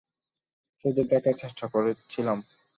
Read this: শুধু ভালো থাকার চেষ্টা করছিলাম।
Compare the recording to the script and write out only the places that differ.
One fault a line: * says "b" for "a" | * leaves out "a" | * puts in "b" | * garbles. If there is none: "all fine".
* leaves out "ভালো"